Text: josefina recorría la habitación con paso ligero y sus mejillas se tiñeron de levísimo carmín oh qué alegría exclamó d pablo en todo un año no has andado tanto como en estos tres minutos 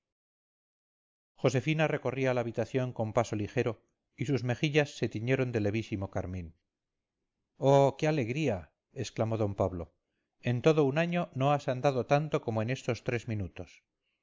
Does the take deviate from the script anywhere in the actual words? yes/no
no